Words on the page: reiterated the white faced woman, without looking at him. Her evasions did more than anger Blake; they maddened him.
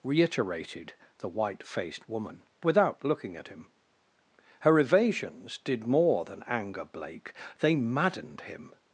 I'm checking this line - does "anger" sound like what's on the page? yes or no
yes